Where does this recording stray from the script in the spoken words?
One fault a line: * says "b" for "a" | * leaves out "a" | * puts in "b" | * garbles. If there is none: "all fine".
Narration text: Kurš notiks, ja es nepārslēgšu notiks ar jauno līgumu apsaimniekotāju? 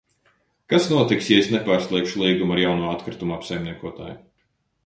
* says "Kas" for "Kurš"
* says "līgumu" for "notiks"
* says "atkritumu" for "līgumu"